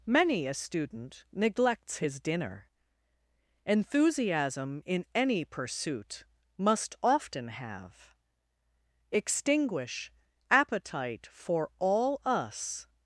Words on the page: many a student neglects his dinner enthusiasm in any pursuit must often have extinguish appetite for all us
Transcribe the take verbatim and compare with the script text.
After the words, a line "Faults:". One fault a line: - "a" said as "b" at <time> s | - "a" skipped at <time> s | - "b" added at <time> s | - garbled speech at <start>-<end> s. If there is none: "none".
many a student neglects his dinner enthusiasm in any pursuit must often have extinguish appetite for all us
Faults:
none